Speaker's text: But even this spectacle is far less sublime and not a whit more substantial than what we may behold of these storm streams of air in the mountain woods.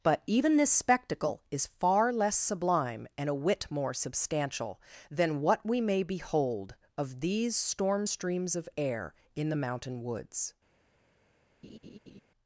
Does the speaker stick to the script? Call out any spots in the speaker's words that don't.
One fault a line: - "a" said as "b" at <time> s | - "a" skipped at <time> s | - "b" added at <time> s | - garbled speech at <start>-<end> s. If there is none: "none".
- "not" skipped at 3.3 s